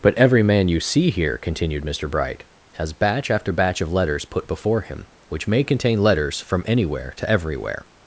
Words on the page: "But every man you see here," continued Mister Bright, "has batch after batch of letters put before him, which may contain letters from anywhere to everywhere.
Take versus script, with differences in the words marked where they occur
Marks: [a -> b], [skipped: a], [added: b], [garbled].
"But every man you see here," continued Mister Bright, "has batch after batch of letters put before him, which may contain letters from anywhere to everywhere.